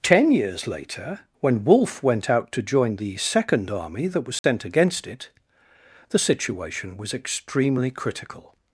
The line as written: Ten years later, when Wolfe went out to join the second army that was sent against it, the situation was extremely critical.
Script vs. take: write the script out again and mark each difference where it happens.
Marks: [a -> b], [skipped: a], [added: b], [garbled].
Ten years later, when Wolfe went out to join the second army that was sent against it, the situation was extremely critical.